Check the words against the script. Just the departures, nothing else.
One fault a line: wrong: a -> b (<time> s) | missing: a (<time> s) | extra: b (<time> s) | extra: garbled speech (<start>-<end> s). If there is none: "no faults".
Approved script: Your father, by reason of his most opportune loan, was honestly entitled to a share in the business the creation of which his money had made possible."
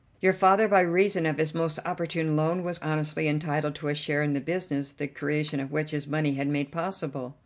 no faults